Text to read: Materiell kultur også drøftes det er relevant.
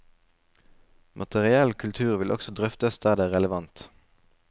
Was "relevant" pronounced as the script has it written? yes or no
yes